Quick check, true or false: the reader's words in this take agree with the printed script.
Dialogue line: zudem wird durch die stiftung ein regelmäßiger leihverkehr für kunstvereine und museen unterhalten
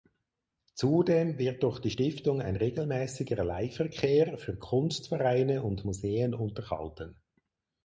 true